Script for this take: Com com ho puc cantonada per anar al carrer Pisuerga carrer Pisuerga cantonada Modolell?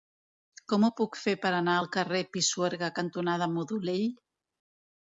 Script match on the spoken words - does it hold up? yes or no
no